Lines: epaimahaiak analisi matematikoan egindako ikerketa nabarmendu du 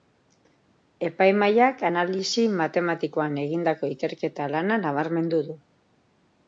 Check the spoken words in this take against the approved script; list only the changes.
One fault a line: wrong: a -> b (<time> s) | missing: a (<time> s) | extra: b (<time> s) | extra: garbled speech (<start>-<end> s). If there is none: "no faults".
extra: lana (4.6 s)